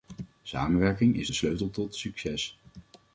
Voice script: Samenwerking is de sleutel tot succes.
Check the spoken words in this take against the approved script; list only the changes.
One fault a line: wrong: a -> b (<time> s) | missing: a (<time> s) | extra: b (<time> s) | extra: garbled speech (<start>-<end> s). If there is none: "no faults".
no faults